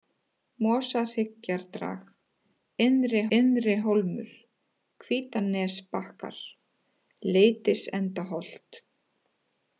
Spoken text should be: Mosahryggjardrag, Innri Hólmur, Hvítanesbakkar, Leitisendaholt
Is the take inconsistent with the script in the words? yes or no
yes